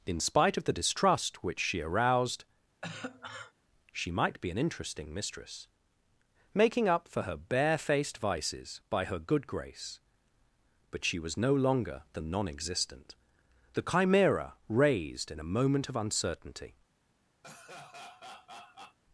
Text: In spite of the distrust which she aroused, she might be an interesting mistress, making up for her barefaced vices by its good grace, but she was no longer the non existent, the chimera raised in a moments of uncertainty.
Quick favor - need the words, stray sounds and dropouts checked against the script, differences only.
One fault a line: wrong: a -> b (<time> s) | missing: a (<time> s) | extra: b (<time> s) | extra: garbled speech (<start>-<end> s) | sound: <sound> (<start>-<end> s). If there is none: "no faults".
sound: cough (2.8-3.5 s)
wrong: its -> her (9.0 s)
wrong: moments -> moment (15.5 s)
sound: laugh (17.4-19.0 s)